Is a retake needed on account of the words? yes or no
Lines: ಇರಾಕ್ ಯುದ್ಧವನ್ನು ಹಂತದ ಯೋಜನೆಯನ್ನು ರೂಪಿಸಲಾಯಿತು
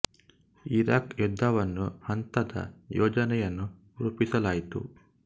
no